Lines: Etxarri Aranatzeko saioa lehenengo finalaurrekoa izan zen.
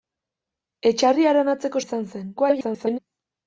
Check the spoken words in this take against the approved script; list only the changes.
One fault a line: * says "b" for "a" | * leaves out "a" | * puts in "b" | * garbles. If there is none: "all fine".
* leaves out "saioa lehenengo finalaurrekoa"
* garbles